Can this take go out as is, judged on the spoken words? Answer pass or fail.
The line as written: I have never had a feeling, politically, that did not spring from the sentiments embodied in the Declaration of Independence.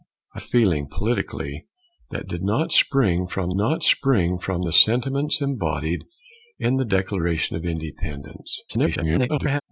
fail